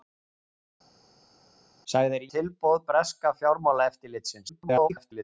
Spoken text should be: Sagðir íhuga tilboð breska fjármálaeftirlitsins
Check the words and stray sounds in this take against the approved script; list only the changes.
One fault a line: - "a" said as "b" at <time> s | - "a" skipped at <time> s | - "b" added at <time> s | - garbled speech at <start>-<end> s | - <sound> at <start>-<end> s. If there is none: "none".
- "íhuga" skipped at 2.2 s
- garbled speech at 4.5-5.2 s